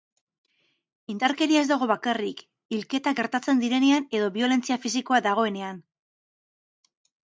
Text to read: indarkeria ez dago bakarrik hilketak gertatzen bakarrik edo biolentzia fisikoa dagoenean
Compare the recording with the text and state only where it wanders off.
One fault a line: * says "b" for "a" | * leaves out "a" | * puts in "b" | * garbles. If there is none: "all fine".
* says "direnean" for "bakarrik"